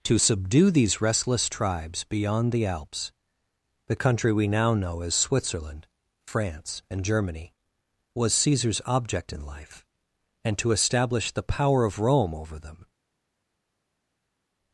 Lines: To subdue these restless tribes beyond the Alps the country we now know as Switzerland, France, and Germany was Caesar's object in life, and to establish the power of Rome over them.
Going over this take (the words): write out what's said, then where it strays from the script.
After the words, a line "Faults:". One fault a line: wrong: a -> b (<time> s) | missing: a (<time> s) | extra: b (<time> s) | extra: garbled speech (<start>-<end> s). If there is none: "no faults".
To subdue these restless tribes beyond the Alps the country we now know as Switzerland, France, and Germany was Caesar's object in life, and to establish the power of Rome over them.
Faults:
no faults